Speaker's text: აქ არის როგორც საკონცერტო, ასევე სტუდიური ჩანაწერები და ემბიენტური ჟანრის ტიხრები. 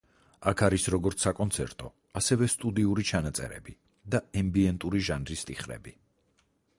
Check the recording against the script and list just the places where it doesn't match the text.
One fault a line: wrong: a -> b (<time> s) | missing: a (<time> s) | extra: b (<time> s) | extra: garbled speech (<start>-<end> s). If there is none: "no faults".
no faults